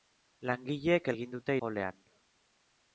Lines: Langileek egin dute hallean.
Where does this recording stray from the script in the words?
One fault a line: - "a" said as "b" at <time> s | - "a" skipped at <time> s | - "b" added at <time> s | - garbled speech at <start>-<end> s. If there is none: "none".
none